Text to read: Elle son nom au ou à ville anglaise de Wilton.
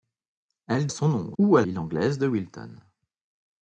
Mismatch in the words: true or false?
false